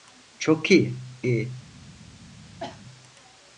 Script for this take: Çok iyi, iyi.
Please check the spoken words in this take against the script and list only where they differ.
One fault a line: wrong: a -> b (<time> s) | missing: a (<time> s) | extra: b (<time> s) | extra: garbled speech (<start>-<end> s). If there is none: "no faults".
no faults